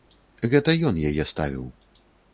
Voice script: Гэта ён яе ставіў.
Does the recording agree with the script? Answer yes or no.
yes